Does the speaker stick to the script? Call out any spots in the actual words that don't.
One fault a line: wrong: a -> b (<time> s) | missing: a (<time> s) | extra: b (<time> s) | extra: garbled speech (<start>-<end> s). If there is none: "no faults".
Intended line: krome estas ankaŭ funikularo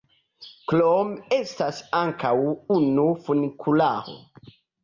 extra: unu (2.8 s)